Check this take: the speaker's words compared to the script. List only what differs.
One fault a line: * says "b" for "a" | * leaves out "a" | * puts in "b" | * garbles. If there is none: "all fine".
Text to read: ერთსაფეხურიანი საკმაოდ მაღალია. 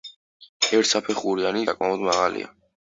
all fine